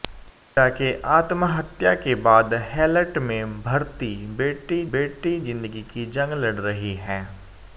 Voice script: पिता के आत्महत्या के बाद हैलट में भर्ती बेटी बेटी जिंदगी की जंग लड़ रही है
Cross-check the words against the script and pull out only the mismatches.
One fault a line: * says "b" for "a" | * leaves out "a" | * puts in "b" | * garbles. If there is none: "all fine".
all fine